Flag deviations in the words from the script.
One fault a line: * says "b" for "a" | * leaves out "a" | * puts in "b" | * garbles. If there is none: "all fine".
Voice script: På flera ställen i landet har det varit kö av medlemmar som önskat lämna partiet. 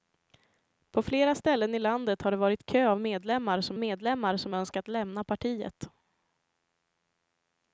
* puts in "medlemmar som"